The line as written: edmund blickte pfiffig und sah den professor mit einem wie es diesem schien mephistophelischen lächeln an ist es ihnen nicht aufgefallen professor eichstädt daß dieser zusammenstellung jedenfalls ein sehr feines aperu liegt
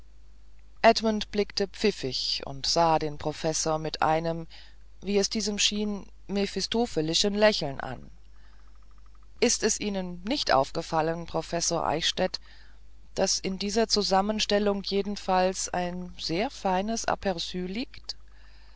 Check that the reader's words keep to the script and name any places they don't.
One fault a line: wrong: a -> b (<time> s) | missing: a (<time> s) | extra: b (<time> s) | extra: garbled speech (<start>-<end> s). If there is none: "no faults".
extra: in (13.4 s)